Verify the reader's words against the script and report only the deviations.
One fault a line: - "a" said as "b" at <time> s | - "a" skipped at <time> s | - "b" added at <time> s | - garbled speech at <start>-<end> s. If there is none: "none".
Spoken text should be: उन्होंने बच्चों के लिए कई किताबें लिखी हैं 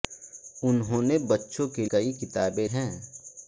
- "लिए" skipped at 1.9 s
- "लिखी" skipped at 2.7 s